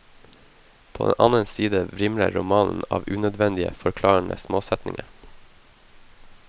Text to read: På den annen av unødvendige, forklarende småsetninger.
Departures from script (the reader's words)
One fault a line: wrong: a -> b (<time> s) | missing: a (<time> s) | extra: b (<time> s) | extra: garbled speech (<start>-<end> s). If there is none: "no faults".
extra: side vrimler romanen (1.4 s)